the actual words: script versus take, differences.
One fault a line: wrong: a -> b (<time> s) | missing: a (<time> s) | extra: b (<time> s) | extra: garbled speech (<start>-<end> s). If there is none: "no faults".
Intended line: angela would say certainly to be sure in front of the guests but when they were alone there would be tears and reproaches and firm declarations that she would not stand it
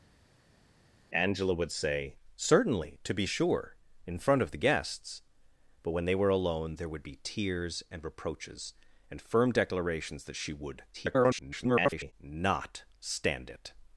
extra: garbled speech (10.9-12.1 s)